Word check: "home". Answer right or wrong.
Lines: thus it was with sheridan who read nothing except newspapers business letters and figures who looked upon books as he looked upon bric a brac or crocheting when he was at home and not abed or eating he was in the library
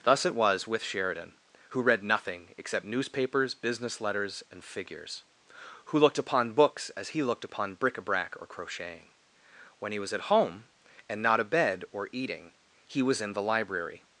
right